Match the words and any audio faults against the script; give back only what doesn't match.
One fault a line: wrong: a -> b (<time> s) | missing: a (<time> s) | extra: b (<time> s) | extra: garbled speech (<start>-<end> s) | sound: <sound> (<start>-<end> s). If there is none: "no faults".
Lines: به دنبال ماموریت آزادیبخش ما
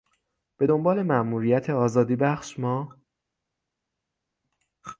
no faults